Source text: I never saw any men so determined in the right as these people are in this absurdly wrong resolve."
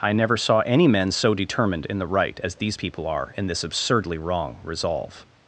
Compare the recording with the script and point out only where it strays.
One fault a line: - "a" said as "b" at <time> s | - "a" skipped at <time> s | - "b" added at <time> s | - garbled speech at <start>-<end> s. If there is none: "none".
none